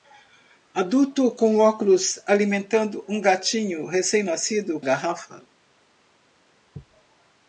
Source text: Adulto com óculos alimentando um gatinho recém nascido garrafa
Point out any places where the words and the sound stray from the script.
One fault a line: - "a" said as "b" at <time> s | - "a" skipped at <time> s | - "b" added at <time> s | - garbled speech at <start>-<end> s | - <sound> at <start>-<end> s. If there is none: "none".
none